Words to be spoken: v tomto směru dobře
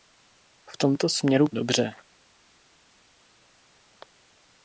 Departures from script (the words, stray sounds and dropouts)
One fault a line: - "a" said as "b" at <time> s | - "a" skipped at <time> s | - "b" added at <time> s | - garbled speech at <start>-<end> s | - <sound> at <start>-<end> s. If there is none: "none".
none